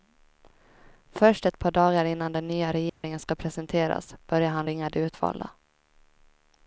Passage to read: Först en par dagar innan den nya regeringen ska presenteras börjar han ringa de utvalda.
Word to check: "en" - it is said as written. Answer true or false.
false